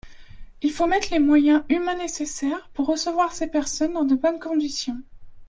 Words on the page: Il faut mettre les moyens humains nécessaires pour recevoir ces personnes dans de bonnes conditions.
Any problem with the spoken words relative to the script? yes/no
no